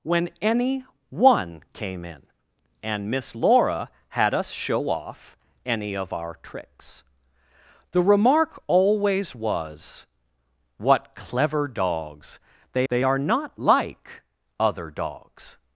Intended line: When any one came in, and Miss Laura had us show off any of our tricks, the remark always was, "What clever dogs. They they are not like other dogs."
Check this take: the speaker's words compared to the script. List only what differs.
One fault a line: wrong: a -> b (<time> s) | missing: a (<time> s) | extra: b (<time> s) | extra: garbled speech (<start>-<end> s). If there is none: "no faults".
no faults